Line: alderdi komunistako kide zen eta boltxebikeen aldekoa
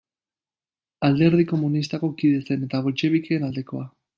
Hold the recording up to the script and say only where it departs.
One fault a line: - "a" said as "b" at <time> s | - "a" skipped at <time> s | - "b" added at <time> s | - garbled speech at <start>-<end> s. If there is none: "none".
none